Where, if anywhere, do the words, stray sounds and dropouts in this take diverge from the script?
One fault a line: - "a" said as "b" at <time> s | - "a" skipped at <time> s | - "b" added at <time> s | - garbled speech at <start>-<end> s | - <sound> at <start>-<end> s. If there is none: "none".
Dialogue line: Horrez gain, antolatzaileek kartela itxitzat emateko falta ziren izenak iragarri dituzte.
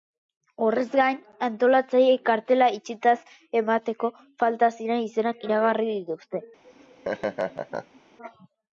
- laugh at 6.6-8.0 s